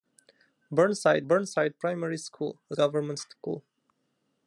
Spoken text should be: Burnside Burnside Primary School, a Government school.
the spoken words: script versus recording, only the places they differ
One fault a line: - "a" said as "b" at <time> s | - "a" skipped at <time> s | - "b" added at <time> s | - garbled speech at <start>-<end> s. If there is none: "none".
none